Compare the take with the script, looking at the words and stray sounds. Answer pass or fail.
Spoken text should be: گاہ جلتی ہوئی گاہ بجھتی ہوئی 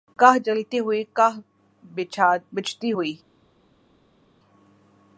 pass